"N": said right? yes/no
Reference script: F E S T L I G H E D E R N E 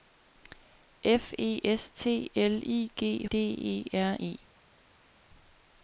no